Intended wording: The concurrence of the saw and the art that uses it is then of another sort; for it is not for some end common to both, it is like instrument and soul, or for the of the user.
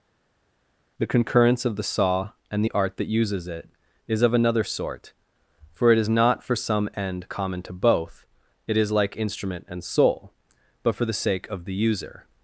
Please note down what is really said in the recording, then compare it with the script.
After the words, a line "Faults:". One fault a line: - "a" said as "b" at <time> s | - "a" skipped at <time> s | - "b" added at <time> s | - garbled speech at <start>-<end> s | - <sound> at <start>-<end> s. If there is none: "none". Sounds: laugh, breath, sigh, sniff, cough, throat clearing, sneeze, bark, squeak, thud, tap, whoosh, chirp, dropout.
The concurrence of the saw and the art that uses it is of another sort; for it is not for some end common to both, it is like instrument and soul, but for the sake of the user.
Faults:
- "then" skipped at 4.2 s
- "or" said as "but" at 10.8 s
- "sake" added at 11.2 s